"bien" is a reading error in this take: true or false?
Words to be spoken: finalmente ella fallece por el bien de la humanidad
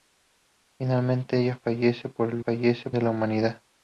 true